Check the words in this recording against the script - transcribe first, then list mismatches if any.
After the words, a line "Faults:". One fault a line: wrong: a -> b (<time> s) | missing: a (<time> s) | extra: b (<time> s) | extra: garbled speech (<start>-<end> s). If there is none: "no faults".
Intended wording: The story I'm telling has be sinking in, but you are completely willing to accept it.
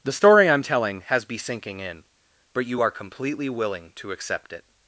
The story I'm telling has be sinking in, but you are completely willing to accept it.
Faults:
no faults